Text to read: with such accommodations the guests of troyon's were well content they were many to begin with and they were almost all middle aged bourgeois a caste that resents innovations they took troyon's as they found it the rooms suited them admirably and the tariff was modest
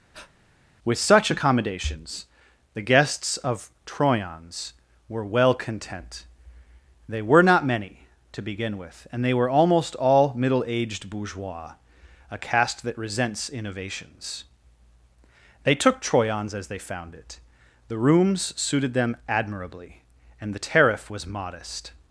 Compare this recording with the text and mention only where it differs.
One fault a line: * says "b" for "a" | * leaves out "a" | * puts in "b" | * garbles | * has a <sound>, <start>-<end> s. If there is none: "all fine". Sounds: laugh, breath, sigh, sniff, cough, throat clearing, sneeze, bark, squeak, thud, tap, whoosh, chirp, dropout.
* has a breath, 0.1-0.3 s
* puts in "not"